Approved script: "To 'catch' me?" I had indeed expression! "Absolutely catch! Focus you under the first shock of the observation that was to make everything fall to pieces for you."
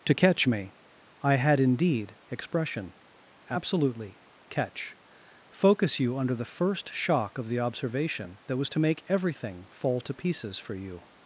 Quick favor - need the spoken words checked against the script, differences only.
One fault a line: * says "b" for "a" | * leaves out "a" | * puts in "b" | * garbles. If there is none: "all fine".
all fine